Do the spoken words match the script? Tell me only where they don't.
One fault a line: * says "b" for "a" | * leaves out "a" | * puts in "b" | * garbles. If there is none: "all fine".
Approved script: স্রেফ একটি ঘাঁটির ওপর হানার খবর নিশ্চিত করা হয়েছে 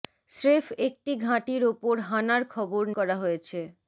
* leaves out "নিশ্চিত"